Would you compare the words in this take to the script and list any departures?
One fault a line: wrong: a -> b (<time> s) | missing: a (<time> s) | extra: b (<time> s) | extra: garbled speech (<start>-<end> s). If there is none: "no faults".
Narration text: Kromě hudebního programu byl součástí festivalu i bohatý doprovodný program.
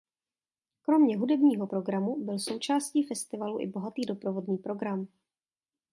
no faults